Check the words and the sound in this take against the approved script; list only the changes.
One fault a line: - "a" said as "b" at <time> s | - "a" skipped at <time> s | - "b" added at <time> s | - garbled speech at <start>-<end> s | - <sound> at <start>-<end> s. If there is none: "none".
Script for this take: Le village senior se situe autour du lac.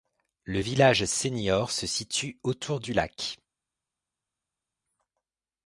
none